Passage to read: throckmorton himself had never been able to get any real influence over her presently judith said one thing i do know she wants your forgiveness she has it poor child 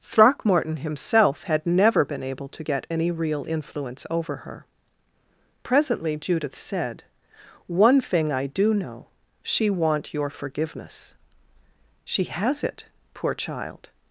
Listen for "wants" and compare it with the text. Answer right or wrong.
wrong